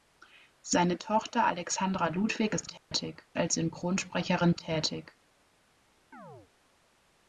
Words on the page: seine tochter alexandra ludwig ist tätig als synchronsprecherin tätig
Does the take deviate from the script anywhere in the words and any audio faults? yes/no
yes